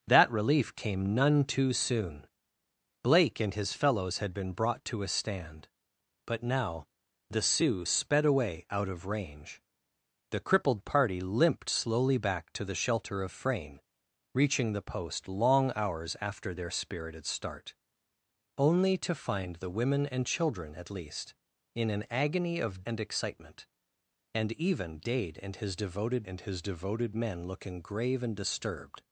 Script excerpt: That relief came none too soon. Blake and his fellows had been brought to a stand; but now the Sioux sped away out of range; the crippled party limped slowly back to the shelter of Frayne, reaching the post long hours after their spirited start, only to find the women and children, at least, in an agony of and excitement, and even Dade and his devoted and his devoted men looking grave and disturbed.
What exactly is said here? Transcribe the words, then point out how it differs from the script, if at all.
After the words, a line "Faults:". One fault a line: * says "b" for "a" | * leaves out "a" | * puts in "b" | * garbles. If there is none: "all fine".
That relief came none too soon. Blake and his fellows had been brought to a stand; but now the Sioux sped away out of range; the crippled party limped slowly back to the shelter of Frayne, reaching the post long hours after their spirited start, only to find the women and children, at least, in an agony of and excitement, and even Dade and his devoted and his devoted men looking grave and disturbed.
Faults:
all fine